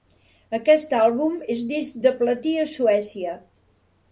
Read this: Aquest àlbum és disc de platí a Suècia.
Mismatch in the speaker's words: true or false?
false